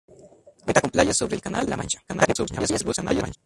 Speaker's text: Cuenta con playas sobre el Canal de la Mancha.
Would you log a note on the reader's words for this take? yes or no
yes